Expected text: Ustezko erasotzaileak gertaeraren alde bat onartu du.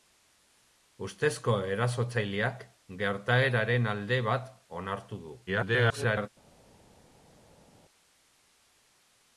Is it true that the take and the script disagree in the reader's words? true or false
true